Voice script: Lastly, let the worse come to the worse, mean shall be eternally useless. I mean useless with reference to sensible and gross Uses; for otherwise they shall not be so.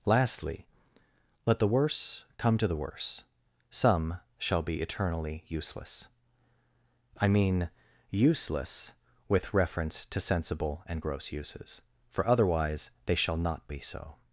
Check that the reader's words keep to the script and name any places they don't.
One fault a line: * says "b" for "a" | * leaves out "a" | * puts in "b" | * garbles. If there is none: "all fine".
* says "some" for "mean"